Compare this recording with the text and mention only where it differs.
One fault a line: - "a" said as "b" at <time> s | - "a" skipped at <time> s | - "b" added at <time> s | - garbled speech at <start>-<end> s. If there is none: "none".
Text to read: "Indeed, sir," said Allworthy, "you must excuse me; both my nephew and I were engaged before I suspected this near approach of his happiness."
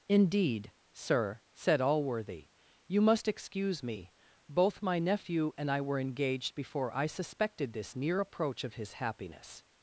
none